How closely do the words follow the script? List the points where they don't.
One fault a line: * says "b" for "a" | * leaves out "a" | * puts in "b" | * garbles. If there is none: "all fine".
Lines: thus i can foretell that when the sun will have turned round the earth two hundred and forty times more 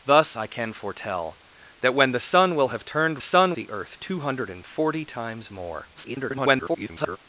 * says "sun" for "round"
* garbles